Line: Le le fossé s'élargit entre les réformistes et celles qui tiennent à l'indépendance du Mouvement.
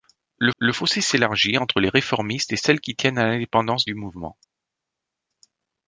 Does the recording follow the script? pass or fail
pass